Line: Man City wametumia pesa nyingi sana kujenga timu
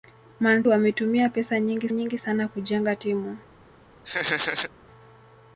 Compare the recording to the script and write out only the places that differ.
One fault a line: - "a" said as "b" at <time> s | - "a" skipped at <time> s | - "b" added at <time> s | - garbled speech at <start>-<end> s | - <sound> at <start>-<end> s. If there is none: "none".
- "City" skipped at 0.6 s
- "nyingi" added at 1.9 s
- laugh at 4.0-4.7 s